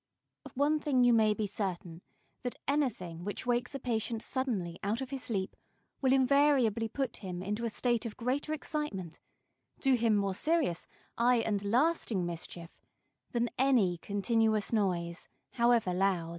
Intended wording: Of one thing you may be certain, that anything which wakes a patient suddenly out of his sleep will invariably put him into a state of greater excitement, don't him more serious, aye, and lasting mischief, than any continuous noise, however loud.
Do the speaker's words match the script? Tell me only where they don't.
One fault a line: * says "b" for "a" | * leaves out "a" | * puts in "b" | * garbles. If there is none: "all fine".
* says "do" for "don't"